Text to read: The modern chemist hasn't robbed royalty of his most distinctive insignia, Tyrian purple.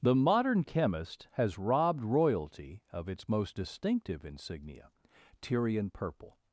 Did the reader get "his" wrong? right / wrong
wrong